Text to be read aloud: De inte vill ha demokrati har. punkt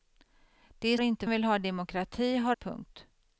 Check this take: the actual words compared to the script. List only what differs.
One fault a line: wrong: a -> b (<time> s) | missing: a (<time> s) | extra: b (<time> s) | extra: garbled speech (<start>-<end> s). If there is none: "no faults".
no faults